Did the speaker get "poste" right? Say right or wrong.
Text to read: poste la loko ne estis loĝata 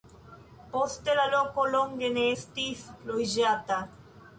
right